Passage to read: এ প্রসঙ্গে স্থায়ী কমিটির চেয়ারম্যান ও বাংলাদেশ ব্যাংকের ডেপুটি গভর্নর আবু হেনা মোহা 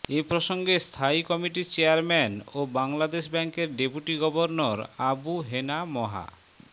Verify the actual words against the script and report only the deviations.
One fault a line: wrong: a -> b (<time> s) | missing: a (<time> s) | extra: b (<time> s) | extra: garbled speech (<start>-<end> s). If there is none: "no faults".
no faults